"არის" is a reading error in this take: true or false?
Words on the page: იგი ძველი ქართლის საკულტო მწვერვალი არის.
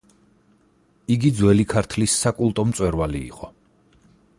true